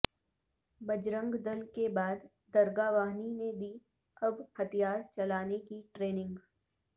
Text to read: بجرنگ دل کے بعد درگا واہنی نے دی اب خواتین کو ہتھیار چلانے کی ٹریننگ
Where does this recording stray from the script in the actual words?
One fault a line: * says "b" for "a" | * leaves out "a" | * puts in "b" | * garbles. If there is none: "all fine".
* leaves out "خواتین کو"